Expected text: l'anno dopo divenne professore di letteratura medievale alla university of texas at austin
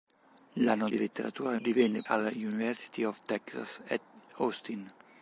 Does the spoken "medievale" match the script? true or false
false